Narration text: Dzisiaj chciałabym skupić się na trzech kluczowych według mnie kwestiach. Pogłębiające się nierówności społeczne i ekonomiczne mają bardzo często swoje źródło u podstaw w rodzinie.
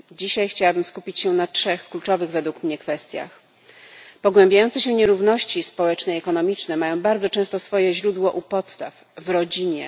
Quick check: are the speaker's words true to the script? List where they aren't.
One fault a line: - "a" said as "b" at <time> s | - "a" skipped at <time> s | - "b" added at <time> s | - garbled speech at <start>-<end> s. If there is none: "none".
none